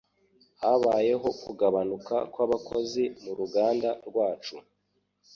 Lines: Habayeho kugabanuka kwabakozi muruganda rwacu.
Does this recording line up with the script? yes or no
yes